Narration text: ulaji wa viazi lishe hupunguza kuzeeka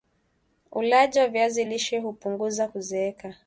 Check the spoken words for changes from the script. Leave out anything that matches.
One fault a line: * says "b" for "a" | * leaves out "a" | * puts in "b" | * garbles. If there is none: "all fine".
all fine